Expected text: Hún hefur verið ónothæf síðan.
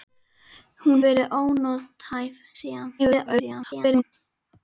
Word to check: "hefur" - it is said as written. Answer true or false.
false